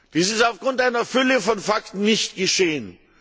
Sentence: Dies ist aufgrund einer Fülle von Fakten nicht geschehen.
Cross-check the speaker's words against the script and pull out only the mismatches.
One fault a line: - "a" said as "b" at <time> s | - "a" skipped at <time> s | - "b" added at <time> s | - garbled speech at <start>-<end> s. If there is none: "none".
none